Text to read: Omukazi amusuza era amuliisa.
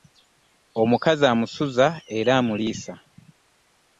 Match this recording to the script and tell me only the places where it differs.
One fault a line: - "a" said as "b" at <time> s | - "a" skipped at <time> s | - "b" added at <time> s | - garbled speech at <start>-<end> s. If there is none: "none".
none